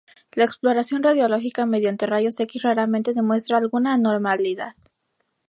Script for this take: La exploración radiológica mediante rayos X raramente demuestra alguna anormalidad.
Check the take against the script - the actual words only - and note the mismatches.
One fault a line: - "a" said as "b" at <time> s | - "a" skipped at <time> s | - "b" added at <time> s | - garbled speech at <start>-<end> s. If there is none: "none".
none